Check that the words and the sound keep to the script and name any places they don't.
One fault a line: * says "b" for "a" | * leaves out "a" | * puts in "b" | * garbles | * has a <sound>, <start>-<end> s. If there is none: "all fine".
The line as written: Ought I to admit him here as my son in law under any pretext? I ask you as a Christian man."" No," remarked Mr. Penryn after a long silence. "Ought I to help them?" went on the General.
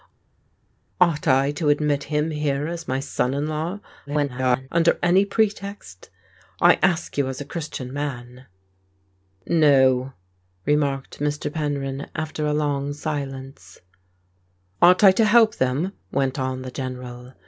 * garbles